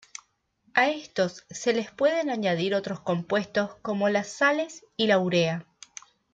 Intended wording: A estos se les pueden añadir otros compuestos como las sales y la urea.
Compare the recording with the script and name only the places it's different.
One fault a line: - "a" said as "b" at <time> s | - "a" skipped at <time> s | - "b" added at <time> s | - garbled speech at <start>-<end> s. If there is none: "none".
none